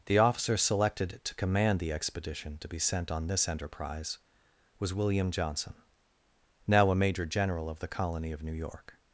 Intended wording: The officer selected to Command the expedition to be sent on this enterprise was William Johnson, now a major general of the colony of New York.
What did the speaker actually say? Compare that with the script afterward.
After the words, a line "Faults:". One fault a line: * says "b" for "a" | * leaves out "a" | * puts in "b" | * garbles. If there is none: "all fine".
The officer selected to Command the expedition to be sent on this enterprise was William Johnson, now a major general of the colony of New York.
Faults:
all fine